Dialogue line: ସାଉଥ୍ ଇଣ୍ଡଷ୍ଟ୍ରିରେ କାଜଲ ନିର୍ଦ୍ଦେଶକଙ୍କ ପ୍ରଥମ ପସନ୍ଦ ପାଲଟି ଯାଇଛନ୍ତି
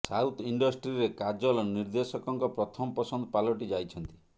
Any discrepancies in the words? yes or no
no